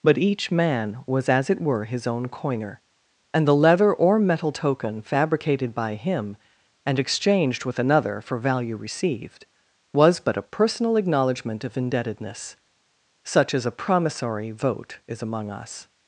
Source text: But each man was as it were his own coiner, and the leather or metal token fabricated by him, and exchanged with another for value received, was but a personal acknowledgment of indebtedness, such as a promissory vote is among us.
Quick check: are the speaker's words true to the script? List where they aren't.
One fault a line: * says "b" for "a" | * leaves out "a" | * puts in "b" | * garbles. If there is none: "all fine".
all fine